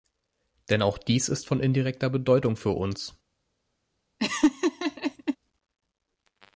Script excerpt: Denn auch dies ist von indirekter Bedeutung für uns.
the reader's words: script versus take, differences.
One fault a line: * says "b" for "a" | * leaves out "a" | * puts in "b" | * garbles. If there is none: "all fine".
all fine